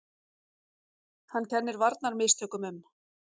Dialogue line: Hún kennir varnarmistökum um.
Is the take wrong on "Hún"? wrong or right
wrong